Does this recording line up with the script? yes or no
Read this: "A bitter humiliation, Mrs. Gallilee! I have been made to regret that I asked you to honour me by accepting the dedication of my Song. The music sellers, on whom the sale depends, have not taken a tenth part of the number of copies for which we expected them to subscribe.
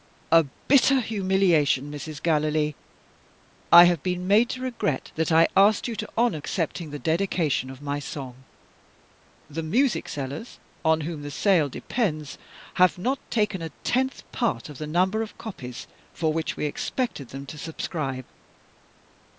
no